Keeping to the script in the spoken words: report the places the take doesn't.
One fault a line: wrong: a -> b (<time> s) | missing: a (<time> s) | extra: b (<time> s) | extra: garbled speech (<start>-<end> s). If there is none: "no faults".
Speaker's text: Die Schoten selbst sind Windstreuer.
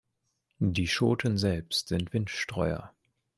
no faults